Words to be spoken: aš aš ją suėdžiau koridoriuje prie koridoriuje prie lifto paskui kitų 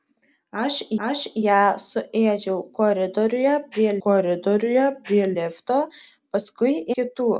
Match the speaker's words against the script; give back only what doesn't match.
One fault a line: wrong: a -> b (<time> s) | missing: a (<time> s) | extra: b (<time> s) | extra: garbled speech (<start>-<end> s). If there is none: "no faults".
no faults